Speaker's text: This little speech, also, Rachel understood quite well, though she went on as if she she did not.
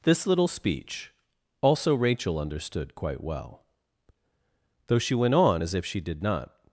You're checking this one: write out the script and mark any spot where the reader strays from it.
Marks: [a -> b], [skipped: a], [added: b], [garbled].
This little speech, also, Rachel understood quite well, though she went on as if she [skipped: she] did not.